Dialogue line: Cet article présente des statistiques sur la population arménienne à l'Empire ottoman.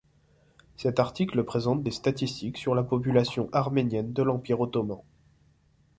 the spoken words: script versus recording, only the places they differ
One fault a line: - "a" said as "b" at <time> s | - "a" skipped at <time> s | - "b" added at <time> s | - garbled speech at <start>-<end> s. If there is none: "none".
- "à" said as "de" at 4.1 s